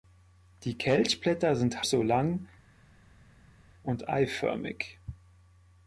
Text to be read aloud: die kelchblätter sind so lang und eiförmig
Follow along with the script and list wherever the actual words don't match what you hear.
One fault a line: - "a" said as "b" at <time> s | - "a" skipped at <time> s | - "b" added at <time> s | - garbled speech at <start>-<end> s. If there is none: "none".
none